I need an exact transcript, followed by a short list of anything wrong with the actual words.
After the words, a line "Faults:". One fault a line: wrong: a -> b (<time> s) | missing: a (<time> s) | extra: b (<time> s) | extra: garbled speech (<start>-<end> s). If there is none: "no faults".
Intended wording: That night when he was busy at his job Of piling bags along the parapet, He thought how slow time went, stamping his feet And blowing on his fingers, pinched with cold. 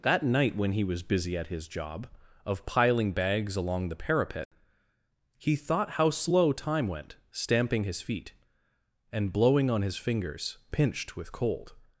That night when he was busy at his job Of piling bags along the parapet, He thought how slow time went, stamping his feet And blowing on his fingers, pinched with cold.
Faults:
no faults